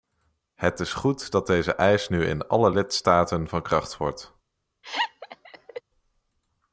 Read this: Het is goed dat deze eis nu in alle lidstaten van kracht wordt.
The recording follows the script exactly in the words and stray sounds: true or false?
false